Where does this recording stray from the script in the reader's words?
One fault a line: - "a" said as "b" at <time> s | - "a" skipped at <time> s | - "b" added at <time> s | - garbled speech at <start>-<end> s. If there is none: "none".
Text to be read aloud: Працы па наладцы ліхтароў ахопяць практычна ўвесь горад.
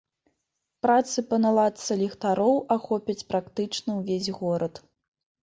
none